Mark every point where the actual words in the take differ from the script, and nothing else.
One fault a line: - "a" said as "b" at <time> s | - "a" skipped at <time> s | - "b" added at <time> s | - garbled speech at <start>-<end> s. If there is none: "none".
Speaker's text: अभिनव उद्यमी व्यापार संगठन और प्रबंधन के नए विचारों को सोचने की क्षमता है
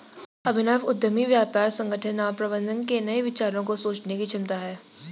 none